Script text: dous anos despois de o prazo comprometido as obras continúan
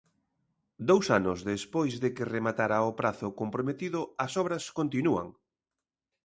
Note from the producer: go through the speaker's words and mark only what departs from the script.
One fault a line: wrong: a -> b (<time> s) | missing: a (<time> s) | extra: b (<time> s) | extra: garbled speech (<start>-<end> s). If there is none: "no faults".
extra: que rematara (2.2 s)